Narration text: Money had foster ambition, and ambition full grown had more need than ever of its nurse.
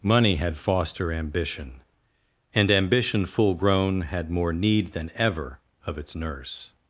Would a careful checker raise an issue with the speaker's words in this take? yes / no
no